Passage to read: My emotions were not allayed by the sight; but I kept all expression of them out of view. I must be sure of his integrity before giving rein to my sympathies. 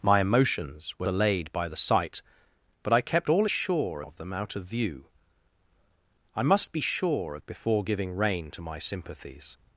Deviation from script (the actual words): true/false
true